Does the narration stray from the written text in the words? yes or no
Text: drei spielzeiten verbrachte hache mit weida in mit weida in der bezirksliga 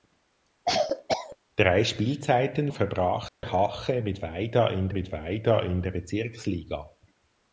no